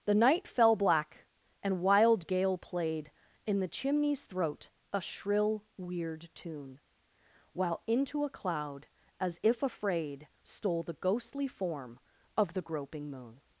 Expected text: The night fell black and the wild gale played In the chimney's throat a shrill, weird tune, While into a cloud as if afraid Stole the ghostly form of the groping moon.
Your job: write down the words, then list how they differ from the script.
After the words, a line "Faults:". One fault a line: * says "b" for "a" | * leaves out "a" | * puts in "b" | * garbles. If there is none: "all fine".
The night fell black and wild gale played In the chimney's throat a shrill, weird tune, While into a cloud as if afraid Stole the ghostly form of the groping moon.
Faults:
* leaves out "the"